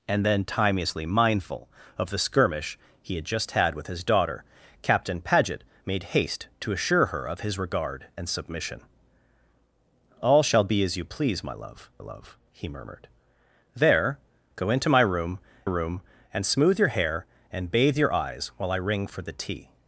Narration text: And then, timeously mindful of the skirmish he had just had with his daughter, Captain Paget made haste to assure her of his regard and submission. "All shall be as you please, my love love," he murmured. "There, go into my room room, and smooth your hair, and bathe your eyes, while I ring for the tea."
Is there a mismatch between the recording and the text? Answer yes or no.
no